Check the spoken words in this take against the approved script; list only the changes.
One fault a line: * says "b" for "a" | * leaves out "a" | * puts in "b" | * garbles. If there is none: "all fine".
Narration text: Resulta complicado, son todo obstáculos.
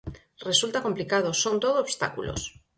all fine